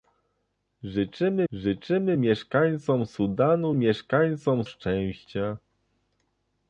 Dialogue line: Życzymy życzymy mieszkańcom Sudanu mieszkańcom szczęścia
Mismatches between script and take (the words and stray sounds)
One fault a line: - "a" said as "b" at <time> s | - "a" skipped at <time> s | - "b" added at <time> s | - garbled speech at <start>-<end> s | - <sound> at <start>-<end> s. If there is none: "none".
none